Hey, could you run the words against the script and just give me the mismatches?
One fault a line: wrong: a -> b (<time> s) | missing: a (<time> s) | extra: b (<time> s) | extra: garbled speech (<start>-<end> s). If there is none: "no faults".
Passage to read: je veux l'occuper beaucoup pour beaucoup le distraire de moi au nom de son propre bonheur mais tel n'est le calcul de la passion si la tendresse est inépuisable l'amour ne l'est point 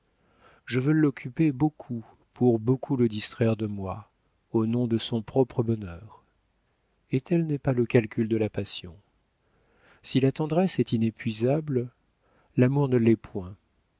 wrong: mais -> et (7.1 s)
extra: pas (7.6 s)